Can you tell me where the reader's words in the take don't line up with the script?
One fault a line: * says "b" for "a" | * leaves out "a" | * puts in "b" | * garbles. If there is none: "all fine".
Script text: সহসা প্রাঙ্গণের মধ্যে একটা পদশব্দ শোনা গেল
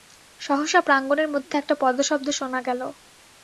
all fine